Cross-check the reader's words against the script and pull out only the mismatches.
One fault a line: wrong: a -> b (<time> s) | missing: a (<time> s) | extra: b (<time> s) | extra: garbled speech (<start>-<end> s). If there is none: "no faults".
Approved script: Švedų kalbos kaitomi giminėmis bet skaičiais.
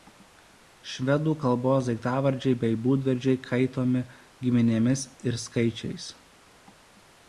extra: daiktavardžiai bei būdvardžiai (1.9 s)
wrong: bet -> ir (5.3 s)